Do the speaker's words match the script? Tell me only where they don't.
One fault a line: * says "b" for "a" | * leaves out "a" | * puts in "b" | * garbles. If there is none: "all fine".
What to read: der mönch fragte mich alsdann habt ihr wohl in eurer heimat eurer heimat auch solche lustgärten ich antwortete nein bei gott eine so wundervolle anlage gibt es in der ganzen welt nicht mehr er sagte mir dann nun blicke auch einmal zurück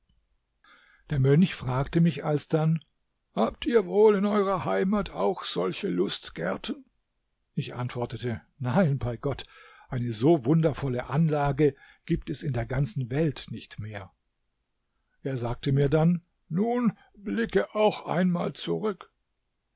* leaves out "eurer heimat"